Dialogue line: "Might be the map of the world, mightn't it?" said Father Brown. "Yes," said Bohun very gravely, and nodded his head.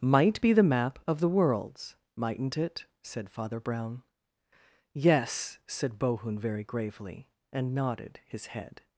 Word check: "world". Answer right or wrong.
wrong